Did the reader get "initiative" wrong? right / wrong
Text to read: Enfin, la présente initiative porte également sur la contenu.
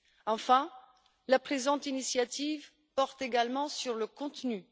right